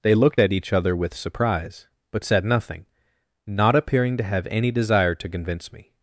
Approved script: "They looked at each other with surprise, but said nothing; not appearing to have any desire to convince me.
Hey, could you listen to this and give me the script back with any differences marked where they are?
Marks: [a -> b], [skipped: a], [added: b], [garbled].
"They looked at each other with surprise, but said nothing; not appearing to have any desire to convince me.